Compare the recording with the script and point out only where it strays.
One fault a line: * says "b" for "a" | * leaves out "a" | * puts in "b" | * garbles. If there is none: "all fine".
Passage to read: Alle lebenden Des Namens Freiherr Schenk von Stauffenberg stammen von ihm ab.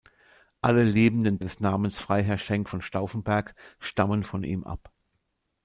all fine